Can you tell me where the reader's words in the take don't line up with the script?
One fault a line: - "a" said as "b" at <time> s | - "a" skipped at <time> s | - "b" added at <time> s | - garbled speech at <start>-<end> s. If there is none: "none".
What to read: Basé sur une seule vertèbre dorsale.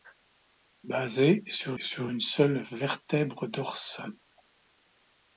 - "sur" added at 1.8 s